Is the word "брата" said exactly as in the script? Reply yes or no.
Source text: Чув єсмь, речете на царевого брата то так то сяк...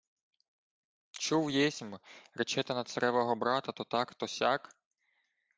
yes